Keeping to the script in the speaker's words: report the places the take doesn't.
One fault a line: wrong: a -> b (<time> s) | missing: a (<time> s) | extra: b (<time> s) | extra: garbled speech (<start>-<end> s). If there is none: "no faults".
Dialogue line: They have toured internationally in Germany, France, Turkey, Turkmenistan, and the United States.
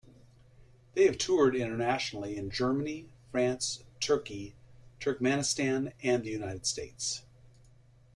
no faults